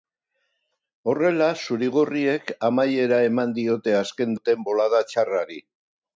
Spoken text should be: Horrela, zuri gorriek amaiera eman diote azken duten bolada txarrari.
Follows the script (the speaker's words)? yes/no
yes